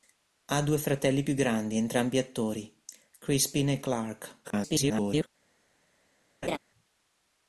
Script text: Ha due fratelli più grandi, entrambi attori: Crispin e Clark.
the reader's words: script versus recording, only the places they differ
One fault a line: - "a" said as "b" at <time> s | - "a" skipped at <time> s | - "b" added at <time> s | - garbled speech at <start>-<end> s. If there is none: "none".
- garbled speech at 4.4-5.3 s